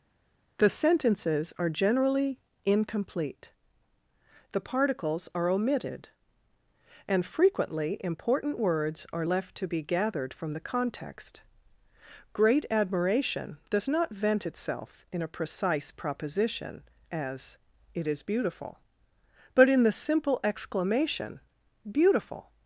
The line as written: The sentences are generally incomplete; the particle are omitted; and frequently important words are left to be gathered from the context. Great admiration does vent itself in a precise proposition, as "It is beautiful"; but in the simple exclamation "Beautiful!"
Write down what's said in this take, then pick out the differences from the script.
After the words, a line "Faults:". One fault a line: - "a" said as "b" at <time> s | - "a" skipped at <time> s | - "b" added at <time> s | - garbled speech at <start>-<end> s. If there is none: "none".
The sentences are generally incomplete; the particles are omitted; and frequently important words are left to be gathered from the context. Great admiration does not vent itself in a precise proposition, as "It is beautiful"; but in the simple exclamation "Beautiful!"
Faults:
- "particle" said as "particles" at 4.6 s
- "not" added at 13.9 s